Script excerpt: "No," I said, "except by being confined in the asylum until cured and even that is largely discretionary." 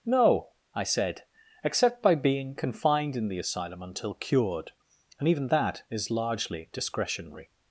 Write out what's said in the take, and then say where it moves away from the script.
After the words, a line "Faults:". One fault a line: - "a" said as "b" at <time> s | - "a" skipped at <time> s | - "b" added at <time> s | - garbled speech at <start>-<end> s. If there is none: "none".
"No," I said, "except by being confined in the asylum until cured and even that is largely discretionary."
Faults:
none